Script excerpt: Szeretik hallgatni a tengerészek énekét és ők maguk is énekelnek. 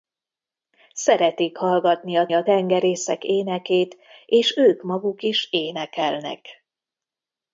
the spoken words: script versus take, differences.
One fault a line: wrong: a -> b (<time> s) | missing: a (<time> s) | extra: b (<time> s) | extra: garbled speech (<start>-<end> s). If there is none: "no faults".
extra: a (2.3 s)